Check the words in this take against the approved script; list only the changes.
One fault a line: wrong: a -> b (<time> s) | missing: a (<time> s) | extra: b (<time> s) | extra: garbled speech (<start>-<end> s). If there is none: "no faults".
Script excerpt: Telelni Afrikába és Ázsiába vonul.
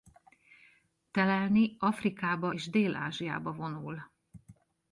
extra: Dél (2.7 s)